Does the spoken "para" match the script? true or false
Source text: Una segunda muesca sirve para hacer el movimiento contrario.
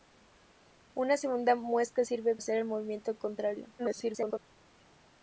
false